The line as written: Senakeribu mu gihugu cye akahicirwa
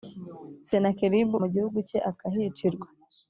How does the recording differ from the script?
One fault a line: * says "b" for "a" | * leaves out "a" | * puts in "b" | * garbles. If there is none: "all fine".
all fine